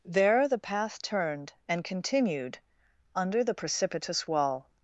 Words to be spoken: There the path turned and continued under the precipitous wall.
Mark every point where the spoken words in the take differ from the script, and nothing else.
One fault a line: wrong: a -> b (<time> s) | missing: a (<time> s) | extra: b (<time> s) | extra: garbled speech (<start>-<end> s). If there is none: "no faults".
no faults